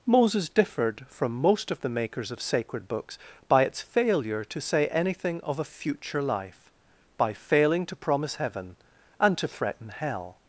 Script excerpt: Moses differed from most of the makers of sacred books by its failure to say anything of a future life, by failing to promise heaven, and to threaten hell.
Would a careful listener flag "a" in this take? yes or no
no